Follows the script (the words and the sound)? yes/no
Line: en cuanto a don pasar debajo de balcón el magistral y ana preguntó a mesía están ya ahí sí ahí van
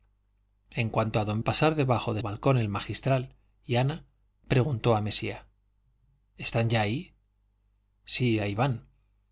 yes